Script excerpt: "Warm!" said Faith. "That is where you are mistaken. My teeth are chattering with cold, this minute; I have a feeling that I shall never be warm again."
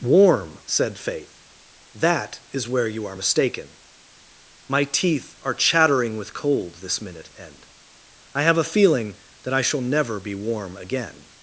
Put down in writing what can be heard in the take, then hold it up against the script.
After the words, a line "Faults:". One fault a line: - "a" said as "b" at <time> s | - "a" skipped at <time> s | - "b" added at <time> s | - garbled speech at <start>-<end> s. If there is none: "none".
"Warm!" said Faith. "That is where you are mistaken. My teeth are chattering with cold, this minute; end I have a feeling that I shall never be warm again."
Faults:
- "end" added at 7.4 s